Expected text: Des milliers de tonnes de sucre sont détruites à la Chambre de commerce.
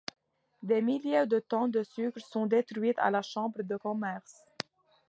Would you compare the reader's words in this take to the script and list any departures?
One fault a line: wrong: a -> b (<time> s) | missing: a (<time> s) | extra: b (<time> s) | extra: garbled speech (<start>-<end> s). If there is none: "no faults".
no faults